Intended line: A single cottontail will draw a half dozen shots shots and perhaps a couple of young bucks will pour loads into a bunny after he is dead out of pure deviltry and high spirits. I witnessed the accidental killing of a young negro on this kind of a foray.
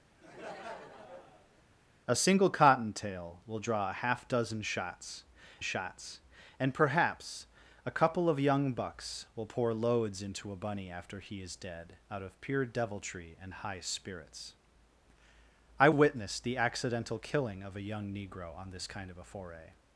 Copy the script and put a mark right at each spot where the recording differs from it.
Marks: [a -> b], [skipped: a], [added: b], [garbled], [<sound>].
[laugh] A single cottontail will draw a half dozen shots shots and perhaps a couple of young bucks will pour loads into a bunny after he is dead out of pure deviltry and high spirits. I witnessed the accidental killing of a young negro on this kind of a foray.